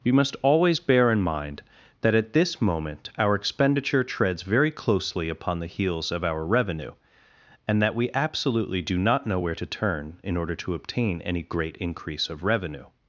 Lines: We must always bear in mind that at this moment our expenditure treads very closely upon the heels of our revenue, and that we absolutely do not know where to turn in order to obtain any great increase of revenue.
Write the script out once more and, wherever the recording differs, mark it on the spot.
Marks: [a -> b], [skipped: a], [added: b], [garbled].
We must always bear in mind that at this moment our expenditure treads very closely upon the heels of our revenue, and that we absolutely do not know where to turn in order to obtain any great increase of revenue.